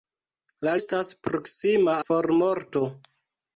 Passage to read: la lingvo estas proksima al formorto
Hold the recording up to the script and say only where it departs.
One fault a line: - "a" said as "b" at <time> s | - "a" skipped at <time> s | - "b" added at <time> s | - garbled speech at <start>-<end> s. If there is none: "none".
- "lingvo" skipped at 0.7 s
- "al" skipped at 2.0 s